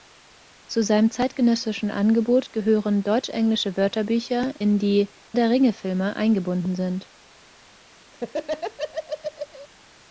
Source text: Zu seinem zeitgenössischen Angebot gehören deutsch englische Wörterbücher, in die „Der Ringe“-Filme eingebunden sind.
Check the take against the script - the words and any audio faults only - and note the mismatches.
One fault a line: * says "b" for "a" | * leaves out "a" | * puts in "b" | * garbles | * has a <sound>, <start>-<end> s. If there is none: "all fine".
* has a laugh, 8.1-9.7 s